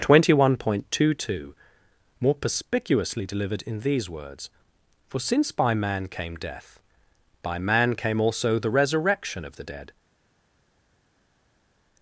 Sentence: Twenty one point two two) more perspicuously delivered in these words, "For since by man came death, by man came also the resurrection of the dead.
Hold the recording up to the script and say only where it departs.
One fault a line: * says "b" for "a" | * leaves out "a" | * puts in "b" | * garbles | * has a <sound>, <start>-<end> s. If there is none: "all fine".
all fine